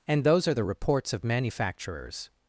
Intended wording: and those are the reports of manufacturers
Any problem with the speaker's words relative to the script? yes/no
no